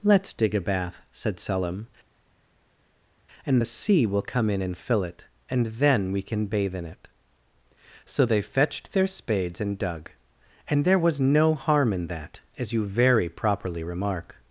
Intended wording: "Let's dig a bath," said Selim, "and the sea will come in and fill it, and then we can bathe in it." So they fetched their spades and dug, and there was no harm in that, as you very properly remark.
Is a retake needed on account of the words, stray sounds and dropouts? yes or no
no